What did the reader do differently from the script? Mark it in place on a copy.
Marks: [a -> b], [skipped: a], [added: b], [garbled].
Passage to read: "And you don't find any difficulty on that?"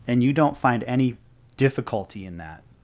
"And you don't find any difficulty [on -> in] that?"